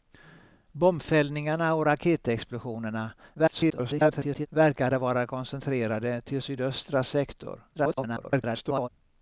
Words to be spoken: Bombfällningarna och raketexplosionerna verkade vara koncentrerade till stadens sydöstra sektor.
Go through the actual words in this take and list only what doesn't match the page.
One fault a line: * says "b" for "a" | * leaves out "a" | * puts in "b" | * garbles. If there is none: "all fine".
* garbles
* leaves out "stadens"
* garbles